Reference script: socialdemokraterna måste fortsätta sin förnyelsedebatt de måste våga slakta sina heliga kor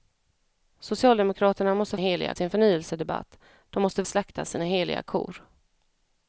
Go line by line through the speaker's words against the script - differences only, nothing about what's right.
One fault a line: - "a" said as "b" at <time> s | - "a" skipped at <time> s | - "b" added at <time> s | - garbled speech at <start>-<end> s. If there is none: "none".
- "fortsätta" said as "heliga" at 2.0 s
- "våga" skipped at 4.0 s